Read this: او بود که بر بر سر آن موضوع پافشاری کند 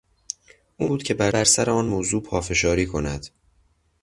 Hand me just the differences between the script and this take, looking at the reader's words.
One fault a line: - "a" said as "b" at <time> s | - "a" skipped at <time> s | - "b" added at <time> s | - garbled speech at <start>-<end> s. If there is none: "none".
none